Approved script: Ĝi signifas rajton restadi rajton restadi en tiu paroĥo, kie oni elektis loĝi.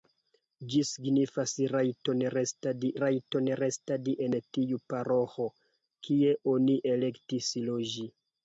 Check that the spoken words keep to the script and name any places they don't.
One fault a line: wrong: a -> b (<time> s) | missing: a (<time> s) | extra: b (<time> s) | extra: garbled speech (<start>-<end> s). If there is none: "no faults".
no faults